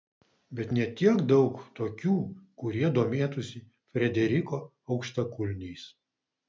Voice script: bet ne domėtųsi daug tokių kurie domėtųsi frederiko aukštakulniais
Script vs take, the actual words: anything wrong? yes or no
yes